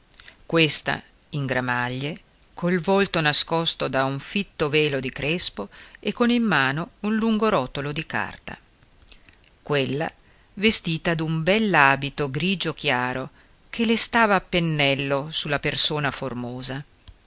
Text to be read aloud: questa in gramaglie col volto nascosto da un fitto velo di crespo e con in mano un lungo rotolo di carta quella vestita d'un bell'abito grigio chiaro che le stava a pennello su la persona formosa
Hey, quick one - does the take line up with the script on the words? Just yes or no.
yes